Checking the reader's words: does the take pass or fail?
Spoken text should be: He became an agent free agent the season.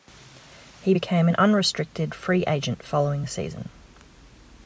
fail